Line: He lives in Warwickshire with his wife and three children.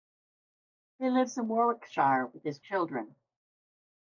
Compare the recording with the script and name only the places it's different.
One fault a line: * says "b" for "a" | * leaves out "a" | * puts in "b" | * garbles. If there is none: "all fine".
* leaves out "wife and three"